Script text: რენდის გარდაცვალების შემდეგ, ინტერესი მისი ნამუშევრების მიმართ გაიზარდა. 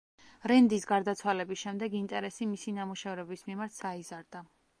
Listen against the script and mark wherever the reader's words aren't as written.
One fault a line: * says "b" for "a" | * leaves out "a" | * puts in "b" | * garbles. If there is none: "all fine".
all fine